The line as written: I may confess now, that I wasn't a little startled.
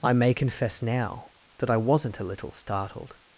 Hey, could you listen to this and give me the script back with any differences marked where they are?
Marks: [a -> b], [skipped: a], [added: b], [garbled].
I may confess now, that I wasn't a little startled.